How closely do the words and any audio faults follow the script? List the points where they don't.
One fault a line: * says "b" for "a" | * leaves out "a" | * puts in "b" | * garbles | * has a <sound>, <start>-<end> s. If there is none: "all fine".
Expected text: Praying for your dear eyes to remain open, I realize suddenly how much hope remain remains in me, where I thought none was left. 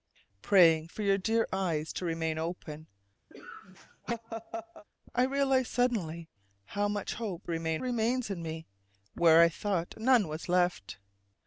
* has a laugh, 3.3-4.8 s